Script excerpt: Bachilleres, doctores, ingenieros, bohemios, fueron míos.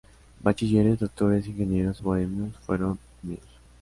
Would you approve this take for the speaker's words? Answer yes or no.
yes